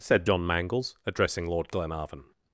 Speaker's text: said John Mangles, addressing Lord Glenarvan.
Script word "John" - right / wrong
right